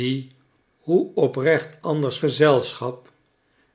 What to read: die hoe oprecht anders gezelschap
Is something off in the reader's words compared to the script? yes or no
no